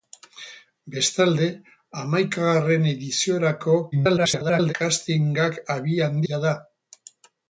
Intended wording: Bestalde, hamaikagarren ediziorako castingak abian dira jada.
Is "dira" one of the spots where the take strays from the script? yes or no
yes